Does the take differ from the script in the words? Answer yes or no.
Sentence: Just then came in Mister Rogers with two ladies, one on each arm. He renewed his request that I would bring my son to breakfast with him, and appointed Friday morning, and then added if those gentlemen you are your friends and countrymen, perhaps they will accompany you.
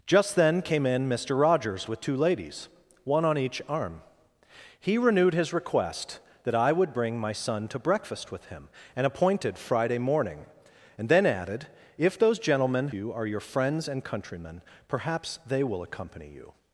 no